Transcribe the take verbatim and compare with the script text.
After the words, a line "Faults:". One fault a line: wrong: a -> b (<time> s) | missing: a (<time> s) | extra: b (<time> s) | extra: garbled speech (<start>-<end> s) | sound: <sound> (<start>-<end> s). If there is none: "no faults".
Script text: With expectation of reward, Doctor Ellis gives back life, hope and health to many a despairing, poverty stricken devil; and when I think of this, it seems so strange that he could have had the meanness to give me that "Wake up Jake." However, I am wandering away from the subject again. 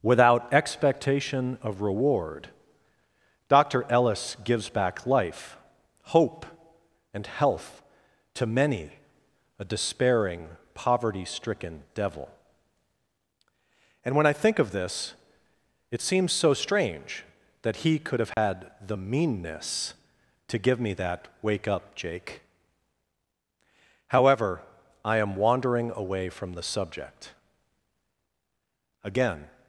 Without expectation of reward, Doctor Ellis gives back life, hope and health to many a despairing, poverty stricken devil; and when I think of this, it seems so strange that he could have had the meanness to give me that "Wake up Jake." However, I am wandering away from the subject again.
Faults:
wrong: With -> Without (0.0 s)
sound: dropout (18.3-18.4 s)